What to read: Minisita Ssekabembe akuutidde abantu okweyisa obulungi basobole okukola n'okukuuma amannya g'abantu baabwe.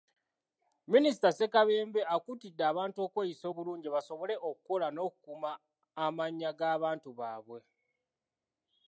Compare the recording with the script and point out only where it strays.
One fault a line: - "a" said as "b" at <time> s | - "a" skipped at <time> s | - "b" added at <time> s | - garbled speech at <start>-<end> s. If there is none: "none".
none